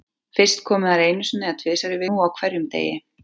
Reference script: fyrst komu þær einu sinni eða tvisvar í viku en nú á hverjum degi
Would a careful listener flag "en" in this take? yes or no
yes